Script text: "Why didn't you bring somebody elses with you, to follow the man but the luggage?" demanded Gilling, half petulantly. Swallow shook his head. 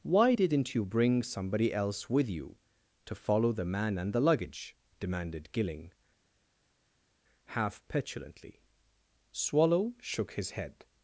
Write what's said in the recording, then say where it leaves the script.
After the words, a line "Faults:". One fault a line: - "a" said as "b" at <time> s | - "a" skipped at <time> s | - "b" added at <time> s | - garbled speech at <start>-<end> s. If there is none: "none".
"Why didn't you bring somebody else with you, to follow the man and the luggage?" demanded Gilling, half petulantly. Swallow shook his head.
Faults:
- "elses" said as "else" at 1.7 s
- "but" said as "and" at 4.0 s